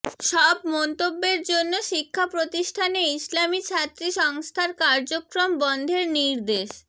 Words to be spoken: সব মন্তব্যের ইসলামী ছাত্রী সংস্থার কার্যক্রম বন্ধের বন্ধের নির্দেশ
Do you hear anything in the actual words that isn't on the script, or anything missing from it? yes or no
yes